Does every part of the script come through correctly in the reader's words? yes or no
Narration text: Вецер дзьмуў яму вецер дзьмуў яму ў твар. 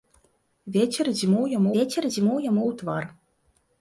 yes